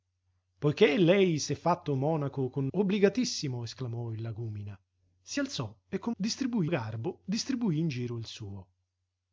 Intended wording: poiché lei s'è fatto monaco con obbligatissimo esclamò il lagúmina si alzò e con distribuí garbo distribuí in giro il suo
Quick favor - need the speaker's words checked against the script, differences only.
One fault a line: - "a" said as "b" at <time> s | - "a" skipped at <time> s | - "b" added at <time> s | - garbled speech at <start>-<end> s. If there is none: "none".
none